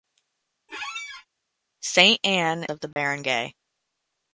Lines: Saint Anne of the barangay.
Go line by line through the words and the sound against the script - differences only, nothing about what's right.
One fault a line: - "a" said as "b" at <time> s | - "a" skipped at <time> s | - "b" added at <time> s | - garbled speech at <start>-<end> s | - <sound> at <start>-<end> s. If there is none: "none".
- squeak at 0.7-1.3 s
- dropout at 2.9-3.0 s